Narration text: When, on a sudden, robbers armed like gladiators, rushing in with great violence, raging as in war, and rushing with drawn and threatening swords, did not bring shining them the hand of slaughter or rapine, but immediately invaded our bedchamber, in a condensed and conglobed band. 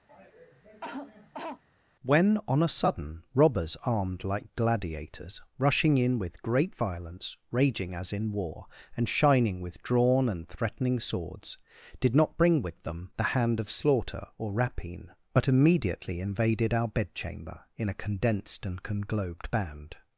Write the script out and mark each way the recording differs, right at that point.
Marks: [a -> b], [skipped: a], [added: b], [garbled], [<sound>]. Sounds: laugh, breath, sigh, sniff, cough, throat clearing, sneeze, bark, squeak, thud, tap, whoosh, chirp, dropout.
[cough] When, on a sudden, robbers armed like gladiators, rushing in with great violence, raging as in war, and [rushing -> shining] with drawn and threatening swords, did not bring [shining -> with] them the hand of slaughter or rapine, but immediately invaded our bedchamber, in a condensed and conglobed band.